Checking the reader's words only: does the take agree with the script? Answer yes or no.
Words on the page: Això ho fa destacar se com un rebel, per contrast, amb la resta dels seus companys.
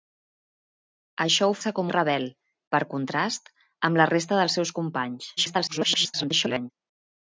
no